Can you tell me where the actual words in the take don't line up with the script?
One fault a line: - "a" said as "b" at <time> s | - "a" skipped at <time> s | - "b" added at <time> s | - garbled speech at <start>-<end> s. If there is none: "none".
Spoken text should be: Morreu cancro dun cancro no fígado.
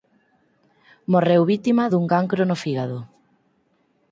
- "cancro" said as "vítima" at 1.5 s